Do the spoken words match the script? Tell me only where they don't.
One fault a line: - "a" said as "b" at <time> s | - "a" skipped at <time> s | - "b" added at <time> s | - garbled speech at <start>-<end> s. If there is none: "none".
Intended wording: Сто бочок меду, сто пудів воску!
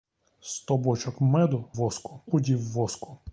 - "сто" said as "воску" at 1.7 s